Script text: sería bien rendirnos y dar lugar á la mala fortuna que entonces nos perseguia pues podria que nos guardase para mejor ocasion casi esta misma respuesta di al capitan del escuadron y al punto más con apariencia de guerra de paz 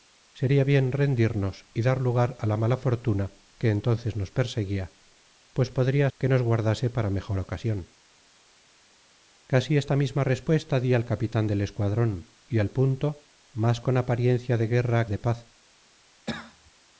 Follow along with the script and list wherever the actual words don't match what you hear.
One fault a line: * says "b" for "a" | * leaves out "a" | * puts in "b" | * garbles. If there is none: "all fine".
all fine